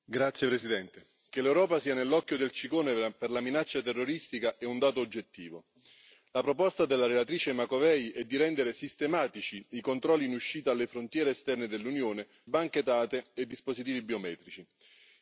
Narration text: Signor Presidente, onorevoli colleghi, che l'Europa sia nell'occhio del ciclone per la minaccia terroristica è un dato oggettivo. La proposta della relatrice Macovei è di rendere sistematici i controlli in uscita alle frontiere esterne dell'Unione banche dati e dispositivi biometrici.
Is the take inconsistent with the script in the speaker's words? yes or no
no